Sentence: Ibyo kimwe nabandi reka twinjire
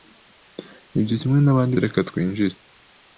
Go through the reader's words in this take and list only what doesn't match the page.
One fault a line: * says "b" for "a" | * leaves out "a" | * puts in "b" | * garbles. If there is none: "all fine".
all fine